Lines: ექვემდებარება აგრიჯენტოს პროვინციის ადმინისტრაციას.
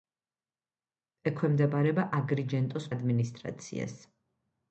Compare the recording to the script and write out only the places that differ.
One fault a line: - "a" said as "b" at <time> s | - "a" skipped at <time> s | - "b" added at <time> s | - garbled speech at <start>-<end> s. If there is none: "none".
- "პროვინციის" skipped at 2.9 s